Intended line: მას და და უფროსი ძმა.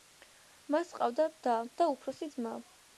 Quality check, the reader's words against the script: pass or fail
fail